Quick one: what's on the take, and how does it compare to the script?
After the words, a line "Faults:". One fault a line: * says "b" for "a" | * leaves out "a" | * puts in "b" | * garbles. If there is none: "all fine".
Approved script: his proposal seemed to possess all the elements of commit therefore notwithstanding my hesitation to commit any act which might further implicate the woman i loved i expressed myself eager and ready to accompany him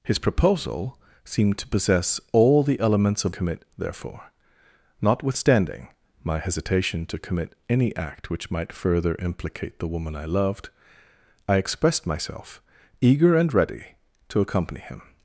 his proposal seemed to possess all the elements of commit therefore notwithstanding my hesitation to commit any act which might further implicate the woman i loved i expressed myself eager and ready to accompany him
Faults:
all fine